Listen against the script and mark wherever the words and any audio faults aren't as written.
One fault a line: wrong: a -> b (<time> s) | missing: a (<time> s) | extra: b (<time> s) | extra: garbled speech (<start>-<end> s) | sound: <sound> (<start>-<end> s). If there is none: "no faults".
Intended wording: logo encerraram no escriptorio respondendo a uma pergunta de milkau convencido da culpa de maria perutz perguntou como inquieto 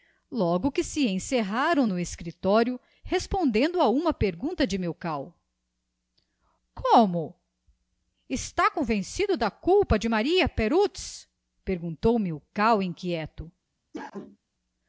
extra: que se (0.7 s)
extra: como está (6.7 s)
wrong: como -> milkau (12.2 s)
sound: cough (13.9-14.4 s)